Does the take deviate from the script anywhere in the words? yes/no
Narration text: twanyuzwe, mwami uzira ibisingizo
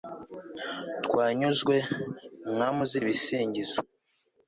no